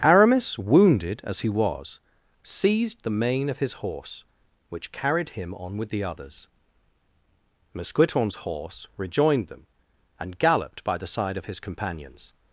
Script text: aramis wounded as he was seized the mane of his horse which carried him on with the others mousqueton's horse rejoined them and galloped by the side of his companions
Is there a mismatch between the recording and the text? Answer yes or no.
no